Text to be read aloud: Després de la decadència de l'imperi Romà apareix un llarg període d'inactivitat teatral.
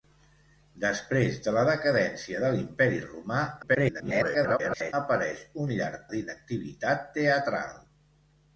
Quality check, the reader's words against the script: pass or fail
fail